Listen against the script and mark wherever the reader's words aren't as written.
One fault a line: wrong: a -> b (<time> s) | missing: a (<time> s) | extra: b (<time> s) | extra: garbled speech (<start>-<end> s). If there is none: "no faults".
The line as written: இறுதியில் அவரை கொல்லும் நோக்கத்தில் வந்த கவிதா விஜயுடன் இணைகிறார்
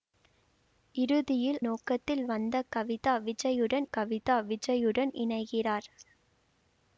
wrong: அவரை கொல்லும் நோக்கத்தில் வந்த -> நோக்கத்தில் வந்த கவிதா விஜயுடன் (1.6 s)